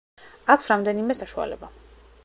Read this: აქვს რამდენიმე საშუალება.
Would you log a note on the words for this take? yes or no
no